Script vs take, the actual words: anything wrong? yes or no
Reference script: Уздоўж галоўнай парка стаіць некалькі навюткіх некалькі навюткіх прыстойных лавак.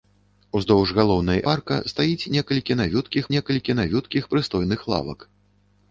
no